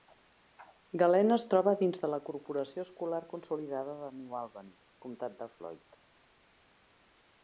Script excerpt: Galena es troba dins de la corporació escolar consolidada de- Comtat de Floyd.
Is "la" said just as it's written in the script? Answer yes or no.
yes